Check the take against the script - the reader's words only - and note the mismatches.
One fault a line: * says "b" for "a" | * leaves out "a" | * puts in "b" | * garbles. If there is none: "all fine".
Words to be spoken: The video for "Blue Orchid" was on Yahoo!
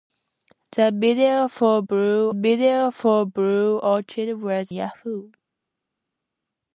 * puts in "video for Blue"
* leaves out "on"